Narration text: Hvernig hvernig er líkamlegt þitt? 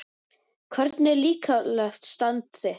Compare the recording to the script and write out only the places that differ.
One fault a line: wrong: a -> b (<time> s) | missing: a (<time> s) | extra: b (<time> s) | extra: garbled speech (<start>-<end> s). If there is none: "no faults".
missing: hvernig (1.1 s)
extra: stand (2.1 s)